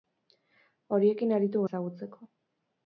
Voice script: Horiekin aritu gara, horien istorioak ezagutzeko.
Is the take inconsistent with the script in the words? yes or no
yes